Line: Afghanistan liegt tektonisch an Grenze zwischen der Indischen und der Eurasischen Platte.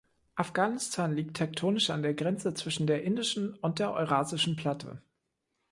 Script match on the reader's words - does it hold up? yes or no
no